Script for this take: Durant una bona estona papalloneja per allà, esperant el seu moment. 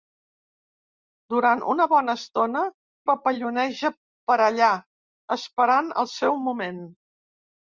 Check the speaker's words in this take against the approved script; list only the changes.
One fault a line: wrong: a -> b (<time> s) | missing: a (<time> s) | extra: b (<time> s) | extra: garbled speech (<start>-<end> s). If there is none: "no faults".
no faults